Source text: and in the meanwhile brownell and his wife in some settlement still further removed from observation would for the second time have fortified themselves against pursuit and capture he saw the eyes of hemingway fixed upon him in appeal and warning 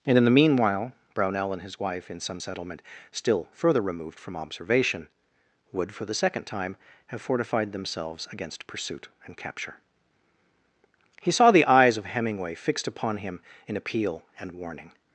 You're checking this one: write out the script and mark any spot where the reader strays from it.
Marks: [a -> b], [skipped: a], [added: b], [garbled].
and in the meanwhile brownell and his wife in some settlement still further removed from observation would for the second time have fortified themselves against pursuit and capture he saw the eyes of hemingway fixed upon him in appeal and warning